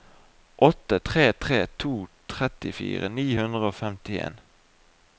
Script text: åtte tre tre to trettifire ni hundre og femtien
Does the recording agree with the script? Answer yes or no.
yes